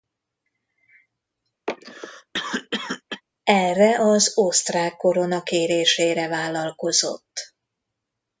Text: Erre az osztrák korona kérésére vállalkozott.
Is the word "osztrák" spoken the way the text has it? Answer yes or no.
yes